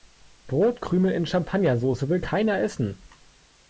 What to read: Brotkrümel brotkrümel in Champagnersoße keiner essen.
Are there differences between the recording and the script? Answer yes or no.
yes